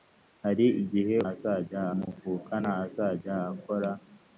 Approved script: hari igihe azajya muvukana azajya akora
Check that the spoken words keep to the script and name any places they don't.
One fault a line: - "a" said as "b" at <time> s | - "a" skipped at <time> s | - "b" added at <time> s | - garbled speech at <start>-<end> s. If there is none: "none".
none